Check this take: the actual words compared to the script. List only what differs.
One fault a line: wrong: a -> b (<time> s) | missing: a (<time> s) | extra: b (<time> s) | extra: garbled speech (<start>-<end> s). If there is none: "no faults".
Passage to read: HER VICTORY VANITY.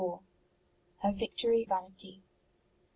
no faults